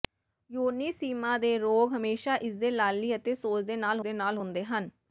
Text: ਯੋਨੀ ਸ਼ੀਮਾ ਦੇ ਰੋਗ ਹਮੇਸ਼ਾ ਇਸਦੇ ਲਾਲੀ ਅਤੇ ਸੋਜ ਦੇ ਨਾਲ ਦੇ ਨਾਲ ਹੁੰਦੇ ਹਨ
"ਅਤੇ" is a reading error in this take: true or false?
false